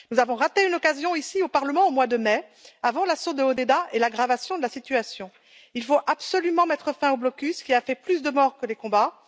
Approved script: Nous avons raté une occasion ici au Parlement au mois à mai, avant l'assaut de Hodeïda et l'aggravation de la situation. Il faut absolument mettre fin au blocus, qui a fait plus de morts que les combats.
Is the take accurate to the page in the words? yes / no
no